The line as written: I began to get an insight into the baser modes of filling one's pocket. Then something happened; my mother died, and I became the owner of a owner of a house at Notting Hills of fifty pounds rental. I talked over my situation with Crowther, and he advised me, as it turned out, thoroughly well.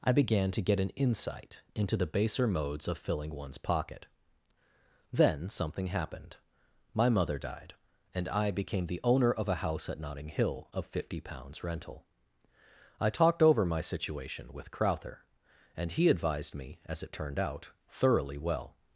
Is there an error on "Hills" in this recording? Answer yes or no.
yes